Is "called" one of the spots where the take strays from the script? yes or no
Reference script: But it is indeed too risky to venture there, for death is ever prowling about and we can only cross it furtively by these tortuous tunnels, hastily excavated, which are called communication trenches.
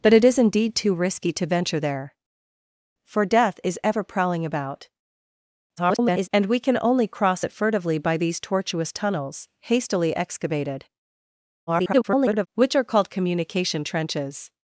no